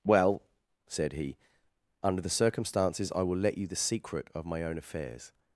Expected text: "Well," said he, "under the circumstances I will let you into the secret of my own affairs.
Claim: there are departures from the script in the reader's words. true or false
true